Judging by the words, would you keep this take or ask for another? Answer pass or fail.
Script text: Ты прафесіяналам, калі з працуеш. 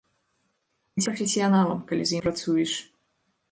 pass